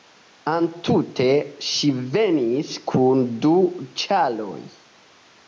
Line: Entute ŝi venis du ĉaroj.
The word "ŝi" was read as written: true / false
true